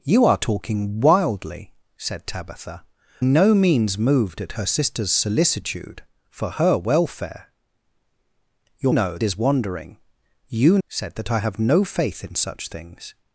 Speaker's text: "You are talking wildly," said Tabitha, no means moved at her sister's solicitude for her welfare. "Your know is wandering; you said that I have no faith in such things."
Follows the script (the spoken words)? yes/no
yes